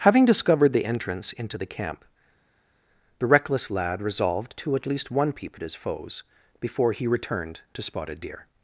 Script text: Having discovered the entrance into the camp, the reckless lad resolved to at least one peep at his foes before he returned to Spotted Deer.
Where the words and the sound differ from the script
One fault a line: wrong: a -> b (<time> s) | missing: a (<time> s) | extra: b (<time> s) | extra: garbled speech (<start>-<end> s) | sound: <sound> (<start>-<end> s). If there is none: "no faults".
no faults